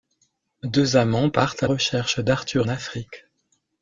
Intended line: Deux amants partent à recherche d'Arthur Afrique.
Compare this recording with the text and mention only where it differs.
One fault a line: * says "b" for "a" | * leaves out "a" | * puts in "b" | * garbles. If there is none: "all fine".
all fine